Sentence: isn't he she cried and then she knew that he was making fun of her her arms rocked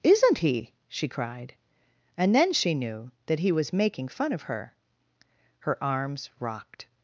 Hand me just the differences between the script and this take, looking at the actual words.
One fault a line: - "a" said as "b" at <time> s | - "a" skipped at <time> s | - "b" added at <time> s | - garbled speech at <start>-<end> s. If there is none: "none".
none